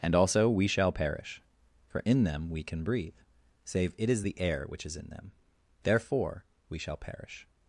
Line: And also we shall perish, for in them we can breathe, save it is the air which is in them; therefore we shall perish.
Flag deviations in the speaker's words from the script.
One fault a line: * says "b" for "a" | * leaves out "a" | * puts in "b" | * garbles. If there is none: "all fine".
all fine